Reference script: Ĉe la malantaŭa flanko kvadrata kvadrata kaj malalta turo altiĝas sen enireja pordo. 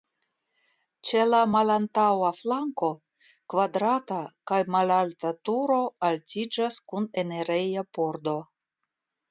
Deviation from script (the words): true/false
true